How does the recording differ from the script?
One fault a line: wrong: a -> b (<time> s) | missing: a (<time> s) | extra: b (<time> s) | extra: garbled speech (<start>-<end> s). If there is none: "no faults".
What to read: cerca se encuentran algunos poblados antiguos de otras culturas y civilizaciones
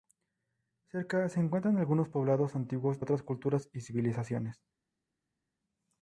missing: de (3.1 s)